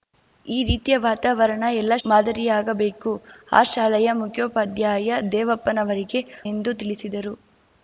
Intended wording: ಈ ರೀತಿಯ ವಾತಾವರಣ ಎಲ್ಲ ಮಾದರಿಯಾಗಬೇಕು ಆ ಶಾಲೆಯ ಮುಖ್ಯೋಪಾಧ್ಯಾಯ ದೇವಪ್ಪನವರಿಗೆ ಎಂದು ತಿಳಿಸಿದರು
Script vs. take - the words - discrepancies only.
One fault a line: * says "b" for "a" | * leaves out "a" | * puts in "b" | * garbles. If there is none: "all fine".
all fine